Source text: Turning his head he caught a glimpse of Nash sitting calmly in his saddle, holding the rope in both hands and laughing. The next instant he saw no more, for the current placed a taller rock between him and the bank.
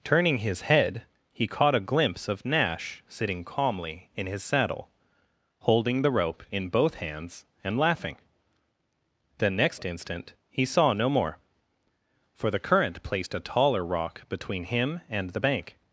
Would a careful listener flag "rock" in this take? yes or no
no